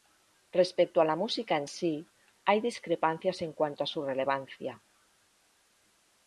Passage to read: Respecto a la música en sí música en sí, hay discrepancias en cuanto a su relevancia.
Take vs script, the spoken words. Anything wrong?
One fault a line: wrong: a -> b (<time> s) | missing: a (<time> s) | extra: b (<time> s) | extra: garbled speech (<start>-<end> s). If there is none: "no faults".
missing: música en sí (2.1 s)